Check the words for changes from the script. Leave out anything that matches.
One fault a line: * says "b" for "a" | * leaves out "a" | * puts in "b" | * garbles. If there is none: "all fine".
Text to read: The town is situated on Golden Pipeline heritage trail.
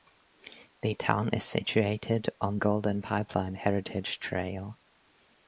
all fine